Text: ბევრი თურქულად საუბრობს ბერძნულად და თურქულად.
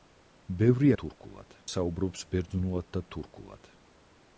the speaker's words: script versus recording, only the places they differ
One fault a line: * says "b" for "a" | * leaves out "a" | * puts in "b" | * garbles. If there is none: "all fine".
all fine